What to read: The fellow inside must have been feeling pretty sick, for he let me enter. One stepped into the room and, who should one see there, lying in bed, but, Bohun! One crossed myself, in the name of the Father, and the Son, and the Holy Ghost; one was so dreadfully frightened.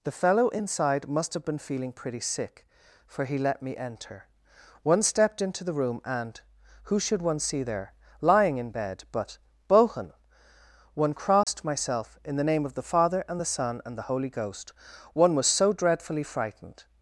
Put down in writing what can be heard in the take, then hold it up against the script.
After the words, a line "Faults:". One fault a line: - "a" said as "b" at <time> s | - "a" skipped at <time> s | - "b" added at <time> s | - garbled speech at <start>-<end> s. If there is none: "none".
The fellow inside must have been feeling pretty sick, for he let me enter. One stepped into the room and, who should one see there, lying in bed, but, Bohun! One crossed myself, in the name of the Father, and the Son, and the Holy Ghost; one was so dreadfully frightened.
Faults:
none